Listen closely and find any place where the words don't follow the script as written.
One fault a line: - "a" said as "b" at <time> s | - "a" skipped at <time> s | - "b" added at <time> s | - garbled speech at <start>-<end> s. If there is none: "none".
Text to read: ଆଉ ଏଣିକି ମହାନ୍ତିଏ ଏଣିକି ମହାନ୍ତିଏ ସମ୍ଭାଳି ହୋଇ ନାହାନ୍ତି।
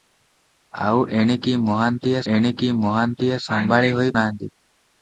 none